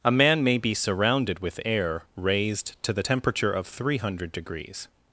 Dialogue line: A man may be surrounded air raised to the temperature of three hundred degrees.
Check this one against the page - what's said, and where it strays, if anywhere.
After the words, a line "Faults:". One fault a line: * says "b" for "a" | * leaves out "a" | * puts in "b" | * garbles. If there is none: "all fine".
A man may be surrounded with air raised to the temperature of three hundred degrees.
Faults:
* puts in "with"